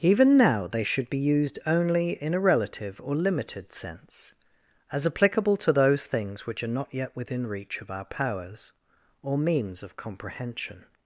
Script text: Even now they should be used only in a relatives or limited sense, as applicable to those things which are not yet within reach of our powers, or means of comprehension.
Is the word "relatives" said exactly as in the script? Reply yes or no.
no